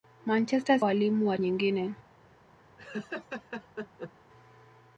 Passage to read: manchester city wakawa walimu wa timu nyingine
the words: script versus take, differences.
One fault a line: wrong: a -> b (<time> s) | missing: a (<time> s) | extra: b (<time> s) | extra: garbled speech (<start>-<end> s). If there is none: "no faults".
missing: city wakawa (0.8 s)
missing: timu (1.4 s)